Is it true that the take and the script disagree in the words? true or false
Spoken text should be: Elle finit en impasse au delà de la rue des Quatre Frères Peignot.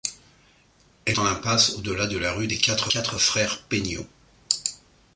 true